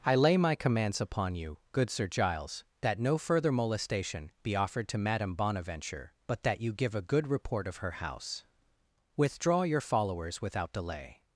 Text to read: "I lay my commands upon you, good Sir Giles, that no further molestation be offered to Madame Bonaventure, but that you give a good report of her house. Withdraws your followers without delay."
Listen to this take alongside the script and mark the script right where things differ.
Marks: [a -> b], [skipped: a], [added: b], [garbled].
"I lay my commands upon you, good Sir Giles, that no further molestation be offered to Madame Bonaventure, but that you give a good report of her house. [Withdraws -> Withdraw] your followers without delay."